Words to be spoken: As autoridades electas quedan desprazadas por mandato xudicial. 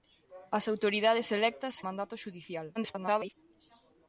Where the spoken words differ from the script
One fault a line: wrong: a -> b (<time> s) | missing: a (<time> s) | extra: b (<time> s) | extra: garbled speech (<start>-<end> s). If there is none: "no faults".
missing: quedan desprazadas por (1.8 s)
extra: garbled speech (2.8-3.3 s)